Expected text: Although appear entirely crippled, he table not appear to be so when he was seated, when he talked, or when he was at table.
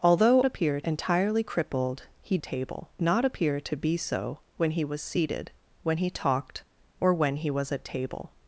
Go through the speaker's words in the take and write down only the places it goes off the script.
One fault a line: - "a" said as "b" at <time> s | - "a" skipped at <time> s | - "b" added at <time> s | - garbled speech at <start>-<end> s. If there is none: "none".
none